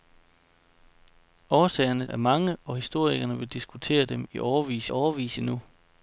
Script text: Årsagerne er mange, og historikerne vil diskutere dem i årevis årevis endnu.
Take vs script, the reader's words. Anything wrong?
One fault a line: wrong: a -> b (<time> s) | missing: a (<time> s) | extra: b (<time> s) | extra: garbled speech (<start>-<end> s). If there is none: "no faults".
no faults